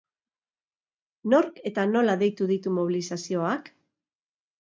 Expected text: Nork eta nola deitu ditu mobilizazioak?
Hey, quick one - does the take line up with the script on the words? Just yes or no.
yes